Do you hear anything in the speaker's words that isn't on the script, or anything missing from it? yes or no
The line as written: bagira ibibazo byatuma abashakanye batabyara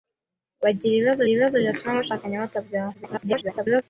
yes